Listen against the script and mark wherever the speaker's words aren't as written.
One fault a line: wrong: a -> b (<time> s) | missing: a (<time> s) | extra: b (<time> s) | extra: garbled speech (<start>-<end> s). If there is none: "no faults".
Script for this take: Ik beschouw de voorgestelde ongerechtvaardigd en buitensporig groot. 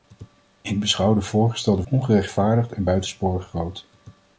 no faults